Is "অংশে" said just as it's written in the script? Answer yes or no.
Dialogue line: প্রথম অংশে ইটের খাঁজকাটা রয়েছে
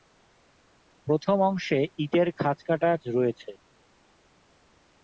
yes